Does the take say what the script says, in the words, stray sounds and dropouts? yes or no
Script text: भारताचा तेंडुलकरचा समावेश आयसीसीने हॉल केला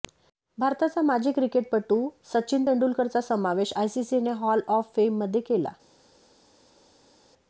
no